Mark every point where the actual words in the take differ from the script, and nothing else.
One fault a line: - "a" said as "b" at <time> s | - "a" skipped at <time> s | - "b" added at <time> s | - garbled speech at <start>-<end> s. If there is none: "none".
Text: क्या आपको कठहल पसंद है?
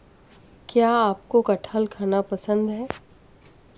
- "खाना" added at 1.9 s